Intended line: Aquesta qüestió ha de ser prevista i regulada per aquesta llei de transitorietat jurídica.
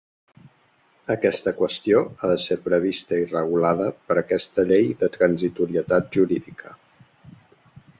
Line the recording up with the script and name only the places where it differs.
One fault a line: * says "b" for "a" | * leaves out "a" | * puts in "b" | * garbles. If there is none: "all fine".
all fine